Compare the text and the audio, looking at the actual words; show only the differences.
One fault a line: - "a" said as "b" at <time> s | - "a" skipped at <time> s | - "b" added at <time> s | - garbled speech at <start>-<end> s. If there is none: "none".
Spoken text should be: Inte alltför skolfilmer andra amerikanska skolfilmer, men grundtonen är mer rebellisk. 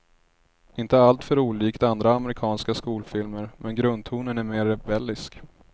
- "skolfilmer" said as "olikt" at 1.4 s